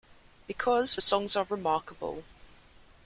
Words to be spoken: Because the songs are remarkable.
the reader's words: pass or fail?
pass